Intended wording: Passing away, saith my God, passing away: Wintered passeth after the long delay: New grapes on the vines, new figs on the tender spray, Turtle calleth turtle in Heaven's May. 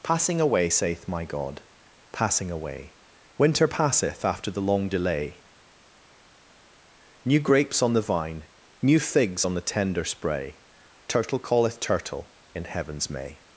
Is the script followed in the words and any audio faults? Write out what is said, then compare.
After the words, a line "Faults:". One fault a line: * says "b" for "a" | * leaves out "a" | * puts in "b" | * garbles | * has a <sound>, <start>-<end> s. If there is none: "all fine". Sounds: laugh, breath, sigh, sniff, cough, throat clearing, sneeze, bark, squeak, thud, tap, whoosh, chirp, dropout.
Passing away, saith my God, passing away: Winter passeth after the long delay: New grapes on the vine, new figs on the tender spray, Turtle calleth turtle in Heaven's May.
Faults:
* says "Winter" for "Wintered"
* says "vine" for "vines"